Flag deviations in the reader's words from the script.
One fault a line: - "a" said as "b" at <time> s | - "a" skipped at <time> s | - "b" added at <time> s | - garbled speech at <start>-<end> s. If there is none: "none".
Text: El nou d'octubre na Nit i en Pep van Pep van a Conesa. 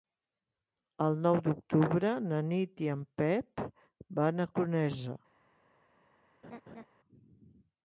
- "Pep van" skipped at 4.4 s